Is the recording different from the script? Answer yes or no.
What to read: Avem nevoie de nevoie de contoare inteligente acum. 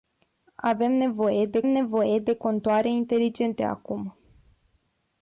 no